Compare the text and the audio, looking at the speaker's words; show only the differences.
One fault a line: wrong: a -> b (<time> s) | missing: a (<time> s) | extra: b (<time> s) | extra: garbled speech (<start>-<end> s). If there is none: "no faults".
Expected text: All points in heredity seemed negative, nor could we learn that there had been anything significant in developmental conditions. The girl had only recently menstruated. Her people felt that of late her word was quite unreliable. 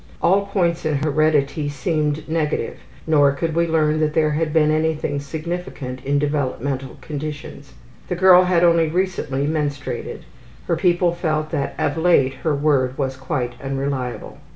no faults